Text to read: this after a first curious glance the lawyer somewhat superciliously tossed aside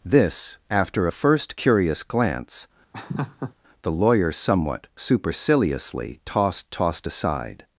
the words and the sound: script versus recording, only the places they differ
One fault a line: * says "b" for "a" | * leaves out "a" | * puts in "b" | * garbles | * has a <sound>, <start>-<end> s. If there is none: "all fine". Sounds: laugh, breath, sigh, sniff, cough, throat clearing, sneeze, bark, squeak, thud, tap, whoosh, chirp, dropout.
* has a laugh, 2.9-3.5 s
* puts in "tossed"